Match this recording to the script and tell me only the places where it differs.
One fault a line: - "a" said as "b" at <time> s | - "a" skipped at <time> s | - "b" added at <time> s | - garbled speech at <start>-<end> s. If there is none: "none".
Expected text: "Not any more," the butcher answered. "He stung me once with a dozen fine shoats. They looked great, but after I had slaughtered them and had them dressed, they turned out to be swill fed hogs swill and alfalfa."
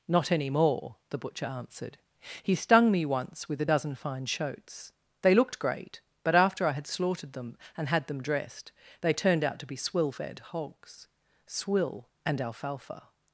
none